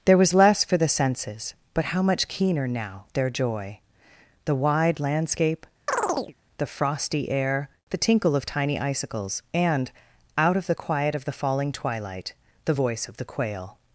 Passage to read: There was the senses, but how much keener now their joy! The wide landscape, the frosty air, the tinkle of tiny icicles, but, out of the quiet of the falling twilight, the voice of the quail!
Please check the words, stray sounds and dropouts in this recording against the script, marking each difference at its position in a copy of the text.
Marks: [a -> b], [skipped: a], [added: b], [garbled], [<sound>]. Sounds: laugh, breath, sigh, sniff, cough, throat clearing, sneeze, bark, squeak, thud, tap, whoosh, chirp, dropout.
There was [added: less for] the senses, but how much keener now their joy! The wide landscape, [chirp] the frosty air, the tinkle of tiny icicles, [but, -> and] out of the quiet of the falling twilight, the voice of the quail!